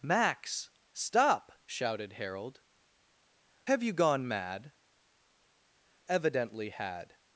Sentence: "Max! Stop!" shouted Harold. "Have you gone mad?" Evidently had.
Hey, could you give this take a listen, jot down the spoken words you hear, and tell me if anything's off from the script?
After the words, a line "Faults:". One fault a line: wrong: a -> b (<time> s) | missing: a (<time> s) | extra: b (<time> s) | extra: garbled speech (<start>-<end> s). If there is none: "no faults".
"Max! Stop!" shouted Harold. "Have you gone mad?" Evidently had.
Faults:
no faults